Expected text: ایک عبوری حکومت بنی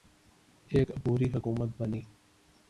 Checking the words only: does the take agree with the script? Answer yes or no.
yes